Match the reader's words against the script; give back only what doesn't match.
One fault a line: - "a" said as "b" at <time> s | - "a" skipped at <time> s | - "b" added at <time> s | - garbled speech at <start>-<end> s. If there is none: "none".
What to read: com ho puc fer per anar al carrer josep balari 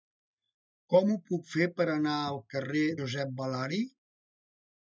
none